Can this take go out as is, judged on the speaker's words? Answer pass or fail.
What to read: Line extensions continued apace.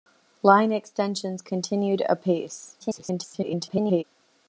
fail